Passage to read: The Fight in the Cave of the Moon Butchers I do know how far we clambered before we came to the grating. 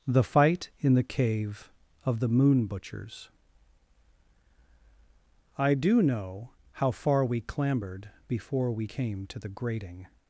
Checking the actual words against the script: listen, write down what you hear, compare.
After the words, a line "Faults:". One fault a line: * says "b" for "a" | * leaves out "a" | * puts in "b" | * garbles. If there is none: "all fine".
The Fight in the Cave of the Moon Butchers I do know how far we clambered before we came to the grating.
Faults:
all fine